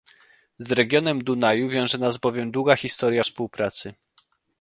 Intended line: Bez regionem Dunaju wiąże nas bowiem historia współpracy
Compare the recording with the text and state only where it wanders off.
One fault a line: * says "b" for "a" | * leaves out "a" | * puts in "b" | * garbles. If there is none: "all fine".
* says "Z" for "Bez"
* puts in "długa"